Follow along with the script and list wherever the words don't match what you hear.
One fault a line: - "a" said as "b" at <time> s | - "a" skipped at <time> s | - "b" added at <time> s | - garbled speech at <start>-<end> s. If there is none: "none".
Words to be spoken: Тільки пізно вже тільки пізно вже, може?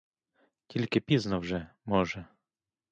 - "тільки пізно вже" skipped at 1.7 s